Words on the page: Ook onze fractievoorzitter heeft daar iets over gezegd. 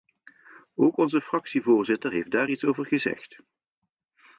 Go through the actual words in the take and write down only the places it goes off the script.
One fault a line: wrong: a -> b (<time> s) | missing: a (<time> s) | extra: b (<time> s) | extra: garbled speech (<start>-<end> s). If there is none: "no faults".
no faults